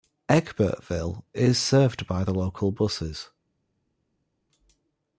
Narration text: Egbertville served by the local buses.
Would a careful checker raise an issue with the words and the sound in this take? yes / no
yes